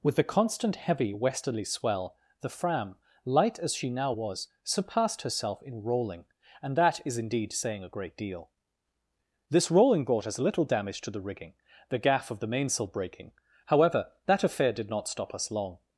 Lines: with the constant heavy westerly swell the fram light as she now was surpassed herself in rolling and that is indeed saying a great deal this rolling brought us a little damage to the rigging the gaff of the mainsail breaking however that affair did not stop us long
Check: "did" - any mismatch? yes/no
no